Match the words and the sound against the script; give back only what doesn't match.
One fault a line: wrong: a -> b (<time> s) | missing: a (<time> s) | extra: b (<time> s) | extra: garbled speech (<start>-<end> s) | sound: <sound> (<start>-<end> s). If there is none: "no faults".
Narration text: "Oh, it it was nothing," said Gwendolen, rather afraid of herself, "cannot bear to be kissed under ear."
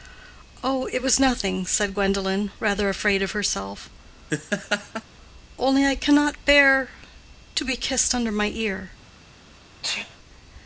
missing: it (1.0 s)
sound: laugh (4.3-5.0 s)
extra: only I (5.6 s)
extra: my (8.3 s)
sound: sneeze (9.8-10.2 s)